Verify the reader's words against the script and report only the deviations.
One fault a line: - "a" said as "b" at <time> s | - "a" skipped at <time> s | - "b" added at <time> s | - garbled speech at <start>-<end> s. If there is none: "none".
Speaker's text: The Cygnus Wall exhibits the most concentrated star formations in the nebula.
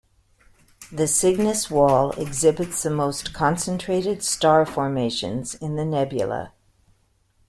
none